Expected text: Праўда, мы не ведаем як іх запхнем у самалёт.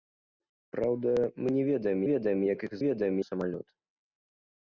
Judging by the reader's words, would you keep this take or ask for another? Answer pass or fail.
fail